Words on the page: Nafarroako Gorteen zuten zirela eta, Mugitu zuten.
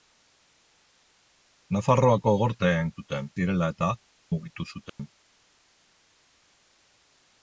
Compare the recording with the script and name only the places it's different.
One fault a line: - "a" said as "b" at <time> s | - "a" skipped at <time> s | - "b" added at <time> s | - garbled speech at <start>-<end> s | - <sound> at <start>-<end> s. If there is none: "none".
- dropout at 4.9-5.0 s